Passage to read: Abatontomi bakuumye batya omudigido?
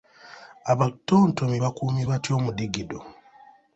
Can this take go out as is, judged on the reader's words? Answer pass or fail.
pass